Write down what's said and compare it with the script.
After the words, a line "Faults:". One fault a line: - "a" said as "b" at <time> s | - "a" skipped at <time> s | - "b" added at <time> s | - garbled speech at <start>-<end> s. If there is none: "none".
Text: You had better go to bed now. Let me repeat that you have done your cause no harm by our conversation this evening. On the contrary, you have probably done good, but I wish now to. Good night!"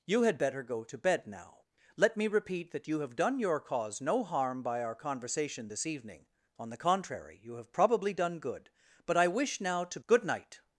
You had better go to bed now. Let me repeat that you have done your cause no harm by our conversation this evening. On the contrary, you have probably done good, but I wish now to. Good night!"
Faults:
none